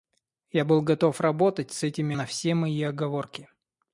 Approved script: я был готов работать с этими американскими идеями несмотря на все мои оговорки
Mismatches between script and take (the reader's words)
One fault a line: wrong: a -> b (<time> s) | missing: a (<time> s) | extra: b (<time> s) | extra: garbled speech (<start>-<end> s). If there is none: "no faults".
missing: американскими идеями несмотря (2.2 s)